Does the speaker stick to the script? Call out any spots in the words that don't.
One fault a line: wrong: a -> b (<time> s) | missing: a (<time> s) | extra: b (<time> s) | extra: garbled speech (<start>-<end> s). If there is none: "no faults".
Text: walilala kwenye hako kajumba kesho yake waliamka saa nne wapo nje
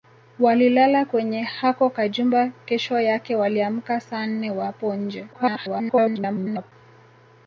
extra: garbled speech (5.3-6.7 s)